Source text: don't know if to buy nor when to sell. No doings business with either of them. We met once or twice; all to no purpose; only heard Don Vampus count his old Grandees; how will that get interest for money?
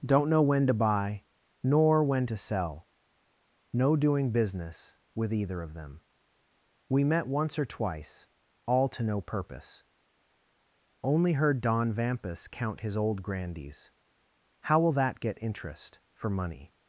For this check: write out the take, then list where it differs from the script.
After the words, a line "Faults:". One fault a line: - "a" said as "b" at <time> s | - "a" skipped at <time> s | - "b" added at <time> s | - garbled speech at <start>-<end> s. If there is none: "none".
don't know when to buy nor when to sell. No doing business with either of them. We met once or twice; all to no purpose; only heard Don Vampus count his old Grandees; how will that get interest for money?
Faults:
- "if" said as "when" at 0.4 s
- "doings" said as "doing" at 4.0 s